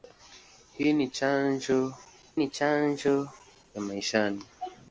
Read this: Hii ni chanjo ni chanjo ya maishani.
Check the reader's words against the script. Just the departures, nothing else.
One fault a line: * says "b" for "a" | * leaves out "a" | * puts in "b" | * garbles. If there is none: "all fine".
all fine